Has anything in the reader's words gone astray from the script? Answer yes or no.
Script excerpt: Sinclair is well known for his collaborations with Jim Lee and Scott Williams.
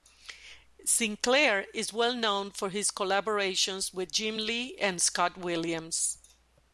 no